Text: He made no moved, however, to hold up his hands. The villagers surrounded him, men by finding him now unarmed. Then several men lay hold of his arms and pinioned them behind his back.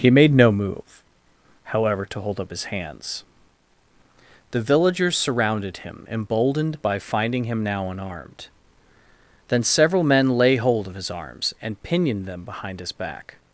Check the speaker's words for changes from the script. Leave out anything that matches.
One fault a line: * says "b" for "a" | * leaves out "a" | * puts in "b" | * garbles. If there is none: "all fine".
* says "move" for "moved"
* says "emboldened" for "men"